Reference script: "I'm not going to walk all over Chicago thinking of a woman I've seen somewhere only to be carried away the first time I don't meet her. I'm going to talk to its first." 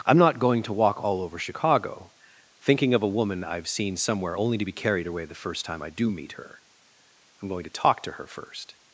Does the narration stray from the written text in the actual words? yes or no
yes